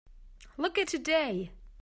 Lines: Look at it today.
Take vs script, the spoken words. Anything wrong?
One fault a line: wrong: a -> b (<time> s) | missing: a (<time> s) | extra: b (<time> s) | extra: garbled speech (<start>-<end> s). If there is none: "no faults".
missing: it (0.9 s)